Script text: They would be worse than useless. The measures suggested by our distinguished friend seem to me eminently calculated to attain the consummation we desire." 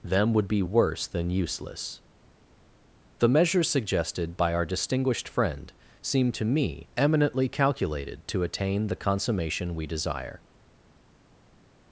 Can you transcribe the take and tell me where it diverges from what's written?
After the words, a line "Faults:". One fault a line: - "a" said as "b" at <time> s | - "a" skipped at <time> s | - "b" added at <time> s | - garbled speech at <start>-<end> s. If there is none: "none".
Them would be worse than useless. The measures suggested by our distinguished friend seem to me eminently calculated to attain the consummation we desire."
Faults:
- "They" said as "Them" at 0.0 s